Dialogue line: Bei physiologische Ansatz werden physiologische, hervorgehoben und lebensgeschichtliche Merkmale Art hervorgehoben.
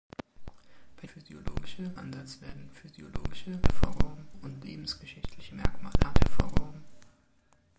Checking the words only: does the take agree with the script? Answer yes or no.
yes